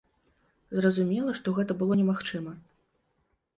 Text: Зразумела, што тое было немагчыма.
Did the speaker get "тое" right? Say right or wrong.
wrong